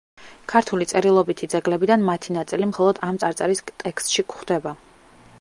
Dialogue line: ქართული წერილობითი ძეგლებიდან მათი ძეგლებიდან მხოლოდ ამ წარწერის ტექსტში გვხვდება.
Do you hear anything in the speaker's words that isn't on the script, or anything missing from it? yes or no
yes